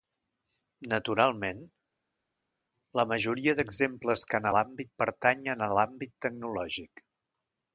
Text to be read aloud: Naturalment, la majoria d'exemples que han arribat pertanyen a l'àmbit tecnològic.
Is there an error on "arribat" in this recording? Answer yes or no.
yes